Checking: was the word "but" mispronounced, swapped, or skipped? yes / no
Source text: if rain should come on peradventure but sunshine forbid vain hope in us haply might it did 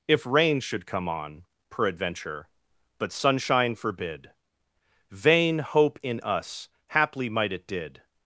no